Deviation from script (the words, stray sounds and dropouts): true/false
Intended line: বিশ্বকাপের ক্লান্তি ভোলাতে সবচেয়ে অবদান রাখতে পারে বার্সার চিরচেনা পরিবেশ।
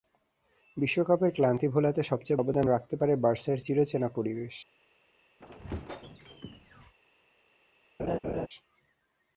true